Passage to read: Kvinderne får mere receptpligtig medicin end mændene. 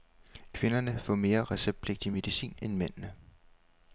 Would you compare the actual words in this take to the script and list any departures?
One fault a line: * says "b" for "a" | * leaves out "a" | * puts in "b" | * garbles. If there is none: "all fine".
all fine